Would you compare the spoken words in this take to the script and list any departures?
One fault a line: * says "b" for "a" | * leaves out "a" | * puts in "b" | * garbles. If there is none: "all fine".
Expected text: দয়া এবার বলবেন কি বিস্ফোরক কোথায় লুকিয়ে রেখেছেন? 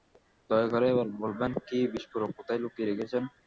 * puts in "করে"